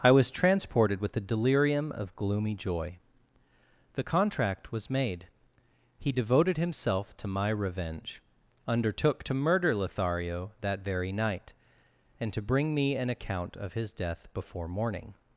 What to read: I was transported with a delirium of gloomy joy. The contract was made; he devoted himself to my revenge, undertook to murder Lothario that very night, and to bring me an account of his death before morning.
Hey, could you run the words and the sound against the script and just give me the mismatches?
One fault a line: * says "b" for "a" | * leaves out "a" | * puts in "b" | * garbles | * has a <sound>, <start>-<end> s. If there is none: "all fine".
all fine